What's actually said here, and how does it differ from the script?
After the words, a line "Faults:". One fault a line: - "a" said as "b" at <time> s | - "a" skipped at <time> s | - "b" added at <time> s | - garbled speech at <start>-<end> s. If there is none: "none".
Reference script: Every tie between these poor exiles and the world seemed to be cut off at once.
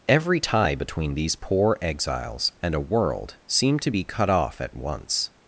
Every tie between these poor exiles and a world seemed to be cut off at once.
Faults:
- "the" said as "a" at 2.8 s